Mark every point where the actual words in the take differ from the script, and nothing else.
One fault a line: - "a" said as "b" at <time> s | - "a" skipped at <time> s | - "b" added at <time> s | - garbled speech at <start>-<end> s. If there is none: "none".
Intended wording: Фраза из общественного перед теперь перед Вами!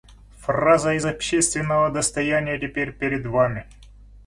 - "перед" said as "достояния" at 1.9 s